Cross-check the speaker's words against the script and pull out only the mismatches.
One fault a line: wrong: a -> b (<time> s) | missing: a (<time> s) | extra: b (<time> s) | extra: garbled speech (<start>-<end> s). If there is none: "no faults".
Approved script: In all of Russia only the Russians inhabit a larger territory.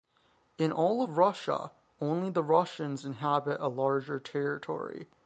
no faults